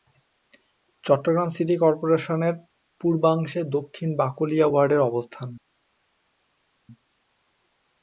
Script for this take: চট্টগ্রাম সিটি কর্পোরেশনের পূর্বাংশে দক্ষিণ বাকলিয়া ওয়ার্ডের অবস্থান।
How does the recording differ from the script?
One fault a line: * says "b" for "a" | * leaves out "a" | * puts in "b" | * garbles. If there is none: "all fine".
all fine